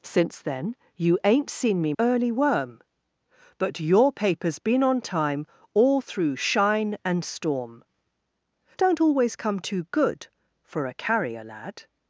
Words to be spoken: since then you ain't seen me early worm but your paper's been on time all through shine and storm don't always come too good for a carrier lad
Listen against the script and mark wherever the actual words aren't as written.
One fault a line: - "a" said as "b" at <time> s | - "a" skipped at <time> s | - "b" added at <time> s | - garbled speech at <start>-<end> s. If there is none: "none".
none